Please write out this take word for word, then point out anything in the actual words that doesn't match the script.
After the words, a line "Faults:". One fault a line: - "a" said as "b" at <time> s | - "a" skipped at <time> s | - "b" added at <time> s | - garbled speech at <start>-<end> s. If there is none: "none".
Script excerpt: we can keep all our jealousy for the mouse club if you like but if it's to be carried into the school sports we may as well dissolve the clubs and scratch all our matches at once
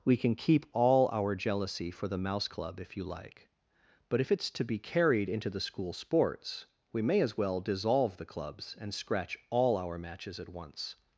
we can keep all our jealousy for the mouse club if you like but if it's to be carried into the school sports we may as well dissolve the clubs and scratch all our matches at once
Faults:
none